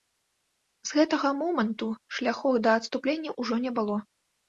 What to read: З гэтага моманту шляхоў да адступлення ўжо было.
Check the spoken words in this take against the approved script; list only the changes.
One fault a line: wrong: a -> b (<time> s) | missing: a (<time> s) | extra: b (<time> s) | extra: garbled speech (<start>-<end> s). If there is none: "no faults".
extra: не (3.7 s)